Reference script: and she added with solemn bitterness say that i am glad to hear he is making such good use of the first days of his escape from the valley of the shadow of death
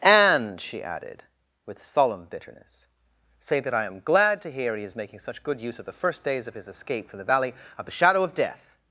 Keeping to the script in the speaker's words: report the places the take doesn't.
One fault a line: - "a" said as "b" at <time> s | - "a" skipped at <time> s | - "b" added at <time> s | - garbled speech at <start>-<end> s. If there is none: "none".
none